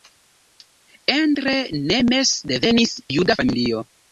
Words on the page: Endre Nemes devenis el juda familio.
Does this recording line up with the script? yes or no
no